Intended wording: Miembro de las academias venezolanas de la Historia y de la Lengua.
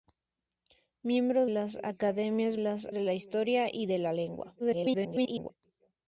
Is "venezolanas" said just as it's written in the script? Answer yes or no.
no